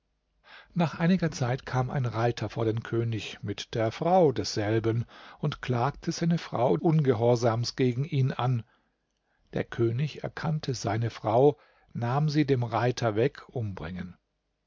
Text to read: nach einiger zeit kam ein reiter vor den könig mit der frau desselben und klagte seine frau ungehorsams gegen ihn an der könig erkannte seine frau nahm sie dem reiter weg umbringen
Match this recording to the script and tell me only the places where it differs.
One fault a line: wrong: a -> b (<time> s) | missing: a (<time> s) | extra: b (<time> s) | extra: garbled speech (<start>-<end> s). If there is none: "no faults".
no faults